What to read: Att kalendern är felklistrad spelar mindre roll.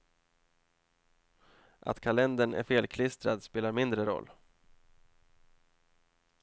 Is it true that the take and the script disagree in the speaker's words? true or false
false